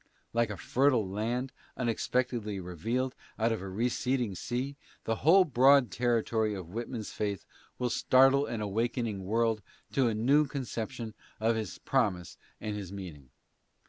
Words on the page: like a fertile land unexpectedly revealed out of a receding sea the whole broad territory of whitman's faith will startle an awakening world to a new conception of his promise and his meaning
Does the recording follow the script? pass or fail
pass